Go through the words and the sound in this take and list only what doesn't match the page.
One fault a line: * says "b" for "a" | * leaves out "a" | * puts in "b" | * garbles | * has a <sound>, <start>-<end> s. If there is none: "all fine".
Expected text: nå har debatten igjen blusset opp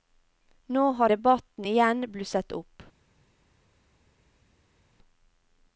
all fine